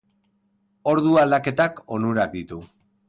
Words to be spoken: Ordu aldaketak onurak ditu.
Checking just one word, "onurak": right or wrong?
right